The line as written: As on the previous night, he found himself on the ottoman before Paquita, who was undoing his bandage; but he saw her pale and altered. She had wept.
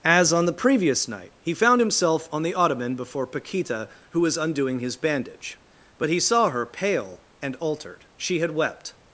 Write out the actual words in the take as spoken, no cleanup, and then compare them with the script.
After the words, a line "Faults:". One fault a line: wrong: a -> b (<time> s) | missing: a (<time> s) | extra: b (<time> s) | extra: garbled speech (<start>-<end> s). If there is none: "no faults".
As on the previous night, he found himself on the ottoman before Paquita, who was undoing his bandage; but he saw her pale and altered. She had wept.
Faults:
no faults